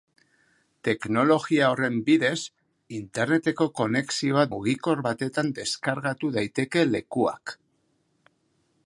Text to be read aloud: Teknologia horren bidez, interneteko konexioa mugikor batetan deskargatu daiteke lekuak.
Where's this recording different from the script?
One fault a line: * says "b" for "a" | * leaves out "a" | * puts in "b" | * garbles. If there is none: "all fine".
all fine